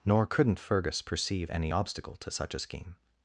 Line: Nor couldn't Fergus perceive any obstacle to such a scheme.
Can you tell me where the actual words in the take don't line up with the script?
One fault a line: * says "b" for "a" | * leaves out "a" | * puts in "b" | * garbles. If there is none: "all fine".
all fine